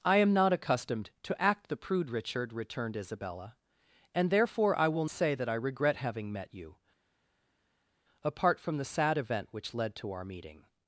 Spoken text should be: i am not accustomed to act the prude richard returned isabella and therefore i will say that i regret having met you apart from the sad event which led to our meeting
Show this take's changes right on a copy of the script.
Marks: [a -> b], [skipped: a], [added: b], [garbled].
i am not accustomed to act the prude richard returned isabella and therefore i will say that i regret having met you apart from the sad event which led to our meeting